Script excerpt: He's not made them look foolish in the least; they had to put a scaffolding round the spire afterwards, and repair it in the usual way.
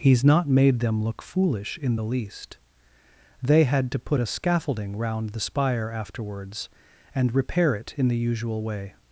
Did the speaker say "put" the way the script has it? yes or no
yes